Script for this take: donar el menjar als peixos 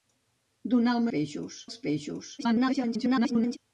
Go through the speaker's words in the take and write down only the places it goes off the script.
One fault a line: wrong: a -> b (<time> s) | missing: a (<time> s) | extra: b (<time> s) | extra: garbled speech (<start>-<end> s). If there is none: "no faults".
wrong: menjar -> peixos (1.1 s)
extra: garbled speech (2.4-3.6 s)